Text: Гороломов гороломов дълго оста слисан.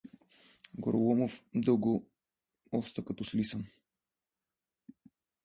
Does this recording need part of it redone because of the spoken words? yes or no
yes